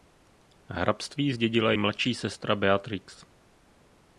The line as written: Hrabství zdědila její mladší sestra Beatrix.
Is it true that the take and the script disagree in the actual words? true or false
true